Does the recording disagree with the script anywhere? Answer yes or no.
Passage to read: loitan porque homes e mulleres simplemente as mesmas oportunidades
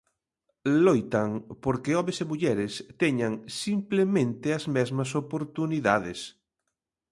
yes